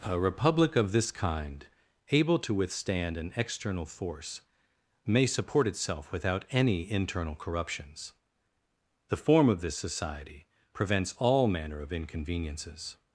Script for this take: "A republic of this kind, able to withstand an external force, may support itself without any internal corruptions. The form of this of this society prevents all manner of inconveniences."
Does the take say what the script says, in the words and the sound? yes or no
no